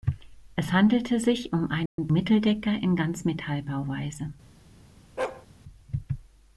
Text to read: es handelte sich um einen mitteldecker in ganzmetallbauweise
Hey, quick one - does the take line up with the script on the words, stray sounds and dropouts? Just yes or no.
no